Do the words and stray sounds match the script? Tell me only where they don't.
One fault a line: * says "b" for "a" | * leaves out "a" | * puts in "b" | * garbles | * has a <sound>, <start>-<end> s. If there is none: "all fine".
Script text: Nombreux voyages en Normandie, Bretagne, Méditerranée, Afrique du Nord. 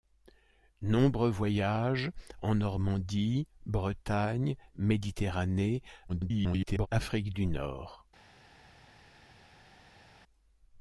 * garbles